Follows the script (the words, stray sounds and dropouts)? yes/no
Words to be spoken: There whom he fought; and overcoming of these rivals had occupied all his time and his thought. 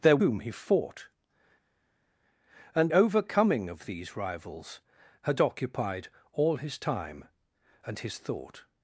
yes